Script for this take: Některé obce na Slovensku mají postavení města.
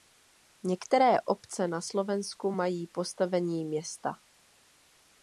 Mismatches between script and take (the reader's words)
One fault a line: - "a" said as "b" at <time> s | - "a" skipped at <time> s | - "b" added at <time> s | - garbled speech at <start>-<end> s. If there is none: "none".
none